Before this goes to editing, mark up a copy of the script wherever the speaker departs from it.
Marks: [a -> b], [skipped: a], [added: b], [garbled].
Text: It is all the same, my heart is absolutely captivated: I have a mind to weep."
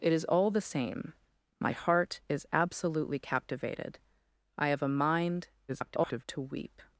It is all the same, my heart is absolutely captivated: I have a mind [garbled] to weep."